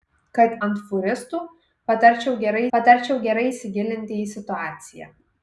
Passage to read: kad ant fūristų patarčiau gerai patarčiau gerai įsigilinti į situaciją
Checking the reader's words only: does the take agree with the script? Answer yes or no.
yes